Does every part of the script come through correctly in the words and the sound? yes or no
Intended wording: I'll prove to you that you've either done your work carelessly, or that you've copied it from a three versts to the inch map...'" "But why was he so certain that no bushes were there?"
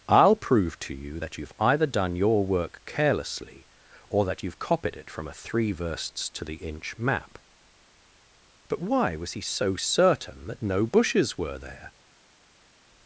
yes